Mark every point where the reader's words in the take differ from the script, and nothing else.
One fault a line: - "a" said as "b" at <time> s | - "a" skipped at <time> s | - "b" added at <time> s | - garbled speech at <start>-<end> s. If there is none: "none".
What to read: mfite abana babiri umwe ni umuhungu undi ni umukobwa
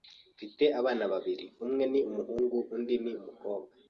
none